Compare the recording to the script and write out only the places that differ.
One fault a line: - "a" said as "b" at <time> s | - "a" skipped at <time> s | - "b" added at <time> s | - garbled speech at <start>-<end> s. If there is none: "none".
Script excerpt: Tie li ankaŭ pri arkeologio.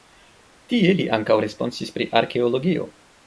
- "responsis" added at 1.4 s